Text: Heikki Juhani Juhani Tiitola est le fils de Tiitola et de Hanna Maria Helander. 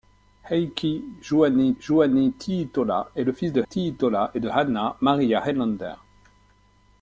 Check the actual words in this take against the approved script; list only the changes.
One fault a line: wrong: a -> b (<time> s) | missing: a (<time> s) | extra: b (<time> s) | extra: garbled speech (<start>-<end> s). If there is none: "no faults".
no faults